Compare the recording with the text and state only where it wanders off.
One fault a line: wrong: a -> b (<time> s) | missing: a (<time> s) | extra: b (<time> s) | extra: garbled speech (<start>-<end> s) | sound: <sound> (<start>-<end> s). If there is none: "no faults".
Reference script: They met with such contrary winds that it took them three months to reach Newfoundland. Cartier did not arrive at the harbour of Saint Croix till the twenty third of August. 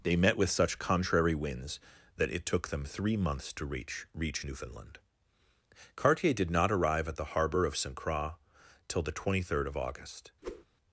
extra: reach (4.1 s)
sound: whoosh (10.4-10.6 s)